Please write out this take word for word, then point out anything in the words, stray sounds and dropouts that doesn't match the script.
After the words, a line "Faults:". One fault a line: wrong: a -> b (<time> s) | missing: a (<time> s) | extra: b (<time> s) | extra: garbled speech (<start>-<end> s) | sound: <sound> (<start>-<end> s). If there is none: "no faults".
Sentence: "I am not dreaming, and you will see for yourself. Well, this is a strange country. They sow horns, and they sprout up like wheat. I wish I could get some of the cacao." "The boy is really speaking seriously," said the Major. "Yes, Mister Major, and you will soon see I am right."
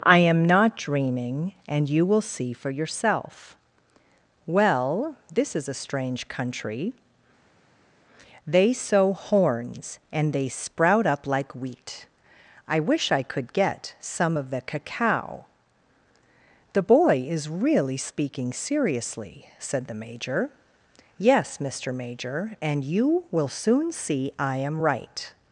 "I am not dreaming, and you will see for yourself. Well, this is a strange country. They sow horns, and they sprout up like wheat. I wish I could get some of the cacao." "The boy is really speaking seriously," said the Major. "Yes, Mister Major, and you will soon see I am right."
Faults:
no faults